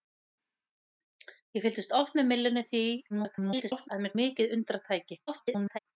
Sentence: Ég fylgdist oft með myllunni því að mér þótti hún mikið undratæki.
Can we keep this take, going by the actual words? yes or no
no